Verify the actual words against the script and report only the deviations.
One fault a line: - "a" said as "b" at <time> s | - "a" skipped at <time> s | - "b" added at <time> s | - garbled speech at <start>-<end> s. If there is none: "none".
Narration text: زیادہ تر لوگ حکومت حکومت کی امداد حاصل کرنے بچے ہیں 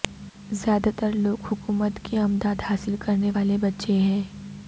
- "حکومت" skipped at 2.0 s
- "والے" added at 3.3 s